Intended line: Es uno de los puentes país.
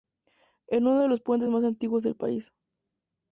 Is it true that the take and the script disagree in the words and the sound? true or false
true